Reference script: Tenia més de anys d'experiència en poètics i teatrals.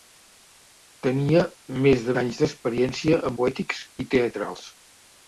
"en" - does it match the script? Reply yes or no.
yes